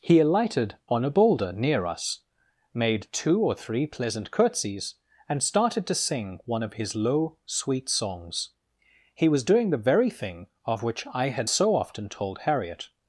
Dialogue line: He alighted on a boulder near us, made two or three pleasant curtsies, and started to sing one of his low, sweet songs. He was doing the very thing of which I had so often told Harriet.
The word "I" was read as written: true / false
true